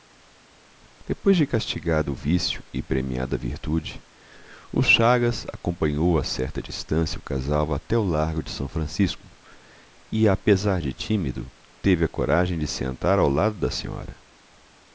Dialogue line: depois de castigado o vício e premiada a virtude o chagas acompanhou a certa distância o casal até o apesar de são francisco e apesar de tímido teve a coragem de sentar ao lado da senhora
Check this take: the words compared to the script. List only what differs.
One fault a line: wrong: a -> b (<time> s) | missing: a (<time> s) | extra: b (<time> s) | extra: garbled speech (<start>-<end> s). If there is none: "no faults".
wrong: apesar -> largo (8.0 s)